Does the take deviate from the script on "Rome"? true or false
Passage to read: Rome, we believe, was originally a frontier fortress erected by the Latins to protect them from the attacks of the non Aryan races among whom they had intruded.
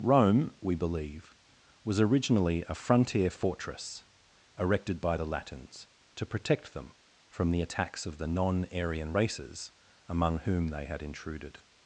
false